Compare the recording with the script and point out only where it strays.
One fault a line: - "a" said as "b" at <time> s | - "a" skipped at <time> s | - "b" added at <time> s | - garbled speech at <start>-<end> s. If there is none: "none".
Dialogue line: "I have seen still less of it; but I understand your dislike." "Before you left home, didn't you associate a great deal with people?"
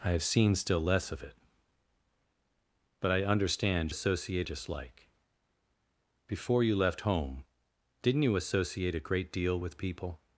- "your" said as "associate" at 3.9 s